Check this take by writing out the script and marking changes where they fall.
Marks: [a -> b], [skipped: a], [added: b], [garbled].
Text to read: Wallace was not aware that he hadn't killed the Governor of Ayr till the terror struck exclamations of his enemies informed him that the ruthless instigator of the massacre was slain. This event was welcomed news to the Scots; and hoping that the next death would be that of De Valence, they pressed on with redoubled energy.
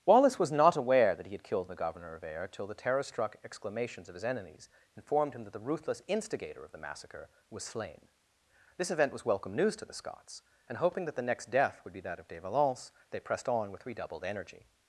Wallace was not aware that he [hadn't -> had] killed the Governor of Ayr till the terror struck exclamations of his enemies informed him that the ruthless instigator of the massacre was slain. This event was [welcomed -> welcome] news to the Scots; and hoping that the next death would be that of De Valence, they pressed on with redoubled energy.